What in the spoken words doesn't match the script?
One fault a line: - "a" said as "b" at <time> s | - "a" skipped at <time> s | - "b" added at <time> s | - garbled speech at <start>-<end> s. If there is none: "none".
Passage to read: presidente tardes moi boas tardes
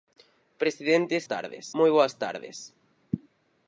none